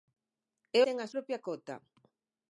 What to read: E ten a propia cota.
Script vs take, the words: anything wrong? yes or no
no